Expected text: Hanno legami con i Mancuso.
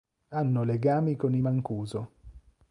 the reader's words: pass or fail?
pass